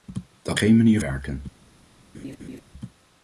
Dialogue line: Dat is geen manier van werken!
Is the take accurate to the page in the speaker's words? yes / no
no